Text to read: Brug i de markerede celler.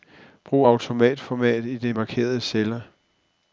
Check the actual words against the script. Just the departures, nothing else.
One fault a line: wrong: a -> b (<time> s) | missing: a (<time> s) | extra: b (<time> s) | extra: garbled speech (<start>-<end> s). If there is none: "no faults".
extra: autoformat (0.6 s)